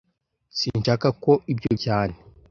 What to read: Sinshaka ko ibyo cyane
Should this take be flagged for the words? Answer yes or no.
no